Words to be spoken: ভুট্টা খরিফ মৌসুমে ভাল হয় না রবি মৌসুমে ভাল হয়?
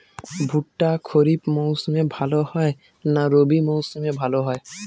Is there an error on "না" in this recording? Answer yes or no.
no